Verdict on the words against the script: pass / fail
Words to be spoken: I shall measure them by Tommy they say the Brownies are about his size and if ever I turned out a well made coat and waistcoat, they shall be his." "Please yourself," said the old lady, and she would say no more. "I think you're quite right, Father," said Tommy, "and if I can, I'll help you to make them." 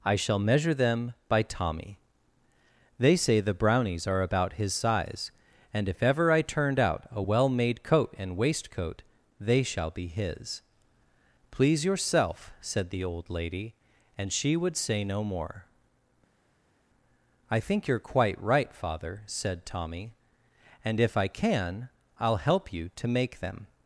pass